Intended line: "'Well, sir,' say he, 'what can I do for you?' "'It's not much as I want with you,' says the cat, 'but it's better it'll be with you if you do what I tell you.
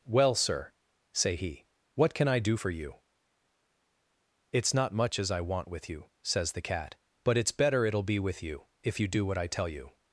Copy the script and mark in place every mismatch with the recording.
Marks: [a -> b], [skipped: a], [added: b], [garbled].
"'Well, sir,' say he, 'what can I do for you?' "'It's not much as I want with you,' says the cat, 'but it's better it'll be with you if you do what I tell you.